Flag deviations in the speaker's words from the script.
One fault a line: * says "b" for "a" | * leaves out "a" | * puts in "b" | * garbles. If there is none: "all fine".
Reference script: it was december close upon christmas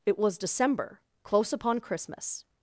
all fine